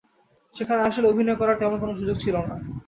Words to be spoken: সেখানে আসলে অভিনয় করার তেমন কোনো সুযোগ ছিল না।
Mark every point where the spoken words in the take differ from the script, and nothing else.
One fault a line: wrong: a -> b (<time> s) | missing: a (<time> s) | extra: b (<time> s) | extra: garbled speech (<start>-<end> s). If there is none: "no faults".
no faults